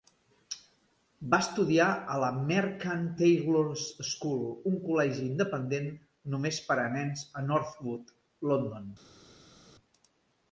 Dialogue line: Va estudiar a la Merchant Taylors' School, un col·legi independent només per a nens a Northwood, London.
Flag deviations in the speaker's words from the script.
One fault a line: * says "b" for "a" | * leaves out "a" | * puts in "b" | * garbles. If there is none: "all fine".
all fine